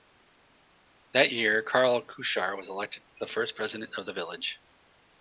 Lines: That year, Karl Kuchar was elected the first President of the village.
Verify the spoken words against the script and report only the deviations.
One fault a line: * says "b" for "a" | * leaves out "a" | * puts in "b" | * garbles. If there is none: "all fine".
all fine